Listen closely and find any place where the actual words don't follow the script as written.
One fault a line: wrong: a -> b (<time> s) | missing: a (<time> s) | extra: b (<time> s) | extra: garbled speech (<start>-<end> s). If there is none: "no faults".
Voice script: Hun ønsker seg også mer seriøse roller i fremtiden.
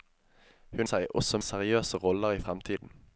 missing: ønsker (0.9 s)
missing: mer (1.4 s)